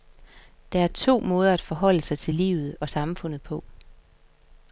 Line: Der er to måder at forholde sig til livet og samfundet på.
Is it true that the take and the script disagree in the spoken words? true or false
false